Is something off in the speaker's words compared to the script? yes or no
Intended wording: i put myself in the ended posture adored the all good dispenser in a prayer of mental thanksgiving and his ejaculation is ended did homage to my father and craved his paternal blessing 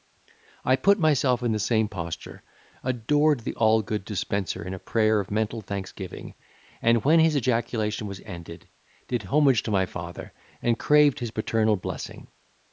yes